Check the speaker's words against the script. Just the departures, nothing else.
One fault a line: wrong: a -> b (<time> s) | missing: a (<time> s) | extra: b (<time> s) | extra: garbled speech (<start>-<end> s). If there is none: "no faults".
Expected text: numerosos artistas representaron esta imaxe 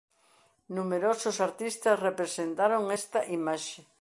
no faults